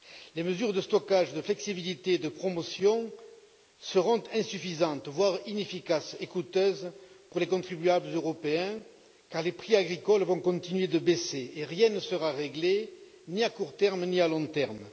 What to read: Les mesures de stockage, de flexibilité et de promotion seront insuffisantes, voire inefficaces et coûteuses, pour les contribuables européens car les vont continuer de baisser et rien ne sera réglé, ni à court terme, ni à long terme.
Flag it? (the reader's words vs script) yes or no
yes